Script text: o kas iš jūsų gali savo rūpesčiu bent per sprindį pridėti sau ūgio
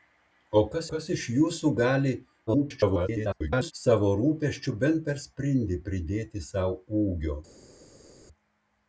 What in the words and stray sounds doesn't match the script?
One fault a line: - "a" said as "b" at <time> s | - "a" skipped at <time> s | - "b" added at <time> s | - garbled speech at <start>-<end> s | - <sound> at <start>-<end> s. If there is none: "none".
- "kas" added at 0.9 s
- garbled speech at 2.5-3.7 s